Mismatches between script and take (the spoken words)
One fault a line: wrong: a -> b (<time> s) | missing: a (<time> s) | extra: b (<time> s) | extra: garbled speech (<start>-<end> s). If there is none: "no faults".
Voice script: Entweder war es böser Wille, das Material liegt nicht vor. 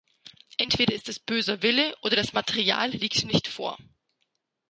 wrong: war -> ist (0.9 s)
extra: oder (2.0 s)